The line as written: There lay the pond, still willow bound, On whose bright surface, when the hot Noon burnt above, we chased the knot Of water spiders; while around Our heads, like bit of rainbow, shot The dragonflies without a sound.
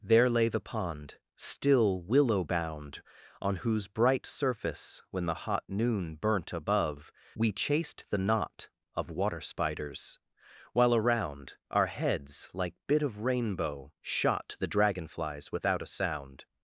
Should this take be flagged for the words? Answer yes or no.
no